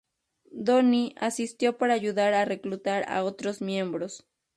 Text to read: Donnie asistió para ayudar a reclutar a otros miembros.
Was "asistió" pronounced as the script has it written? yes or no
yes